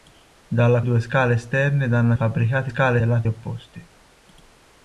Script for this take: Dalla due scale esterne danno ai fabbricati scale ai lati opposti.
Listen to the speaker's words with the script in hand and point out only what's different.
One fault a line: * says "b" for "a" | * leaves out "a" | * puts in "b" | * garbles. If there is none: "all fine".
all fine